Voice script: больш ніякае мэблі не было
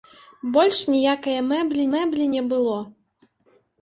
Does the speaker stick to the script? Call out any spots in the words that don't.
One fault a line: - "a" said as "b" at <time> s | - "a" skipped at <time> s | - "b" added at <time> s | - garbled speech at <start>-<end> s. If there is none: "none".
- "мэблі" added at 1.9 s